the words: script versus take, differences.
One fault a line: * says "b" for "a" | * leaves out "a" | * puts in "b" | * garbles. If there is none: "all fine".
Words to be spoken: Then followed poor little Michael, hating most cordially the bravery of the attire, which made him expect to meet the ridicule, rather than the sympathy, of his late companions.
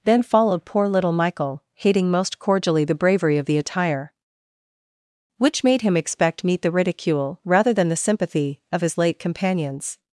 * leaves out "to"